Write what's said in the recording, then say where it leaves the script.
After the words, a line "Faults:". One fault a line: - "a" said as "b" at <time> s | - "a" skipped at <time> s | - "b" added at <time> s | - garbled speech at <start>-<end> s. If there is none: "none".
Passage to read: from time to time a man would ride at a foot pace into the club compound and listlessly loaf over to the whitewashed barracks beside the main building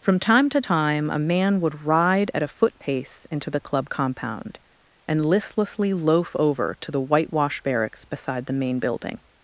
from time to time a man would ride at a foot pace into the club compound and listlessly loaf over to the whitewashed barracks beside the main building
Faults:
none